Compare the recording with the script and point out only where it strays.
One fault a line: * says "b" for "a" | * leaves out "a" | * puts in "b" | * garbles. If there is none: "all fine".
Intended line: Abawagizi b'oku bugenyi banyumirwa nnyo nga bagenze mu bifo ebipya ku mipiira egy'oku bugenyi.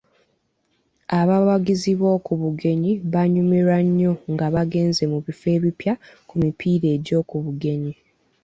all fine